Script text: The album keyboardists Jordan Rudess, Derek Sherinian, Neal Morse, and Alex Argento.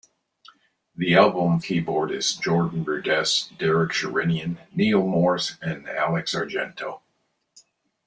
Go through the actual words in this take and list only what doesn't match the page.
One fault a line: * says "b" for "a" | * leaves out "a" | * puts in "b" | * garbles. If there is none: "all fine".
all fine